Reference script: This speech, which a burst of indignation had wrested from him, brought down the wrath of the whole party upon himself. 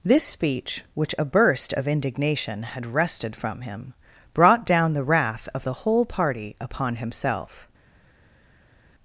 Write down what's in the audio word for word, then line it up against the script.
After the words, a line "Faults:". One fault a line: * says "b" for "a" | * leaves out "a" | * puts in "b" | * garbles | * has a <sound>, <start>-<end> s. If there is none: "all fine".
This speech, which a burst of indignation had wrested from him, brought down the wrath of the whole party upon himself.
Faults:
all fine